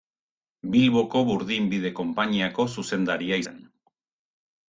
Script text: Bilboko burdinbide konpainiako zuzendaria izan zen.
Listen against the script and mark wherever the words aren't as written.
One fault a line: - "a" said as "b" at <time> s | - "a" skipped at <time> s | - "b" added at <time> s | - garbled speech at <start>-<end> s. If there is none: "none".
- "izan" skipped at 3.4 s